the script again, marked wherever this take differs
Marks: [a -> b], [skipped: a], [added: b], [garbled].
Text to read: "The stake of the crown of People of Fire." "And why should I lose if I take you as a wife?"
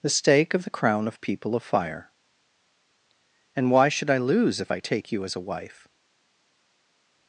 "The stake of the crown of People of Fire." "And why should I lose if I take you as a wife?"